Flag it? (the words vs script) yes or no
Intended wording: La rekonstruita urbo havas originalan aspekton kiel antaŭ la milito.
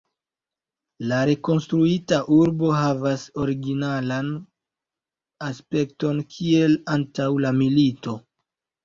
no